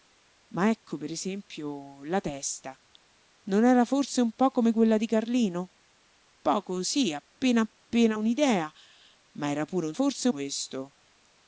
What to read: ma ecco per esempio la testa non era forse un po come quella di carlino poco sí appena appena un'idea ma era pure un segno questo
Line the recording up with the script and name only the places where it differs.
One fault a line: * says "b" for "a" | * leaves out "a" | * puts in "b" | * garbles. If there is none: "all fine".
* says "forse" for "segno"